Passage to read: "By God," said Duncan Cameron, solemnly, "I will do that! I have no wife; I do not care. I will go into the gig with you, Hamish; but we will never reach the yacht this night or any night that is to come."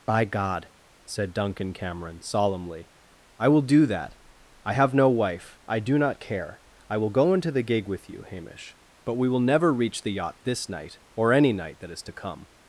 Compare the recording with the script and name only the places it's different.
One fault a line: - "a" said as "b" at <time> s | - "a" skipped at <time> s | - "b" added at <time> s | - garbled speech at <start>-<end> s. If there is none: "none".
none